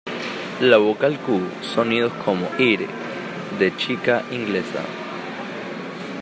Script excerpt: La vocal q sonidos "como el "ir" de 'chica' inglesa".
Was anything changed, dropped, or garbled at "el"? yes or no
yes